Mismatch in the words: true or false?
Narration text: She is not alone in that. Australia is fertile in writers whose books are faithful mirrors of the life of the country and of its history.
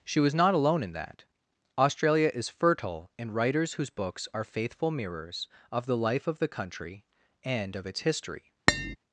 true